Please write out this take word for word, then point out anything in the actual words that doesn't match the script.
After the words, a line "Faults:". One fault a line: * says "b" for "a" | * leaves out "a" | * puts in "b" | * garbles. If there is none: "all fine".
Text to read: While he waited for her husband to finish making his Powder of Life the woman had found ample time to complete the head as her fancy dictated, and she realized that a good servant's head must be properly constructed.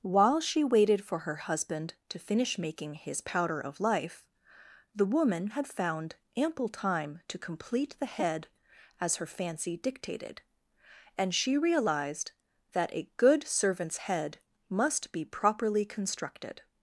While she waited for her husband to finish making his Powder of Life the woman had found ample time to complete the head as her fancy dictated, and she realized that a good servant's head must be properly constructed.
Faults:
* says "she" for "he"